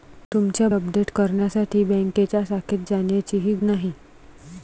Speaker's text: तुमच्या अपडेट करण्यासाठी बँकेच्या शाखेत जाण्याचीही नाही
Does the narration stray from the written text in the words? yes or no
no